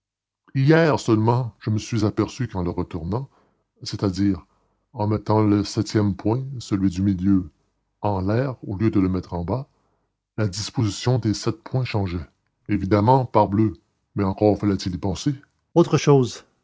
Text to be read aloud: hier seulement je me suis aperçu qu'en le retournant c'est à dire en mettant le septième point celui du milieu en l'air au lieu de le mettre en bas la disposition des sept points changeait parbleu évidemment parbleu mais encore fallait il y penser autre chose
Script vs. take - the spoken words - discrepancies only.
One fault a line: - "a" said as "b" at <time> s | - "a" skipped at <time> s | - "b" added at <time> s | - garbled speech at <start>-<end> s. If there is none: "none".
- "parbleu" skipped at 12.2 s